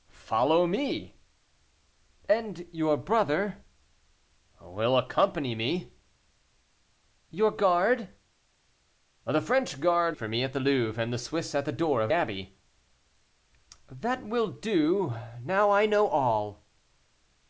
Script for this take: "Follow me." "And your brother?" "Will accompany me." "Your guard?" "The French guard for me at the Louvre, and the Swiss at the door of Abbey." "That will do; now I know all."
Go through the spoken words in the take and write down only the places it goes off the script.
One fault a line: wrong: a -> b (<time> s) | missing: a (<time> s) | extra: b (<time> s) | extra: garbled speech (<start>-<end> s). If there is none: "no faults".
no faults